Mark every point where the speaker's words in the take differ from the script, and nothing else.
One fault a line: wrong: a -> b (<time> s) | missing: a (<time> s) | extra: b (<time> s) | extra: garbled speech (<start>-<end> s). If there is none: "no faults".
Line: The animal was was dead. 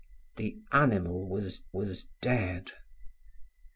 no faults